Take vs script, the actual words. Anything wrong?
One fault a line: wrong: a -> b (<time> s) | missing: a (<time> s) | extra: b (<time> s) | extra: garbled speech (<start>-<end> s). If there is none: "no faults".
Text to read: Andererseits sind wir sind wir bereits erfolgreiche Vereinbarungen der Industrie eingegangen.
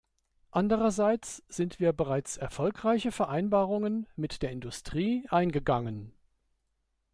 missing: sind wir (1.9 s)
extra: mit (4.2 s)